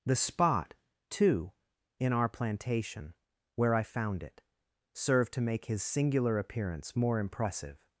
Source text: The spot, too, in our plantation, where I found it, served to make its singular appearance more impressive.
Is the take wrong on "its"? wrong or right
wrong